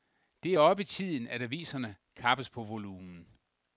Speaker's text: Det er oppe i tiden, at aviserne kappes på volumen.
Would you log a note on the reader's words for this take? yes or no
no